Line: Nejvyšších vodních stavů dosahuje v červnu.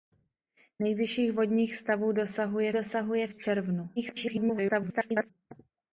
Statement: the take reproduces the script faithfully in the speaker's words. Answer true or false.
false